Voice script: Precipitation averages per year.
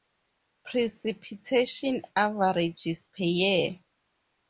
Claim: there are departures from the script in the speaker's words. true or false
false